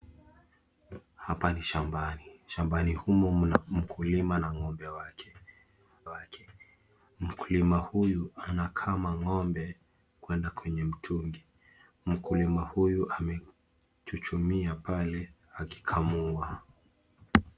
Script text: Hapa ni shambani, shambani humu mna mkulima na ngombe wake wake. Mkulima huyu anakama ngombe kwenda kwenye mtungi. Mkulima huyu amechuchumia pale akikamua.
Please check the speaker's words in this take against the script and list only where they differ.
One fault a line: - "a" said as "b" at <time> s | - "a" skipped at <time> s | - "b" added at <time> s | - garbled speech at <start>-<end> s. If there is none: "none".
none